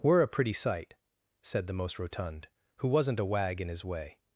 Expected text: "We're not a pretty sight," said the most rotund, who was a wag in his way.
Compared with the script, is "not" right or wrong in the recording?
wrong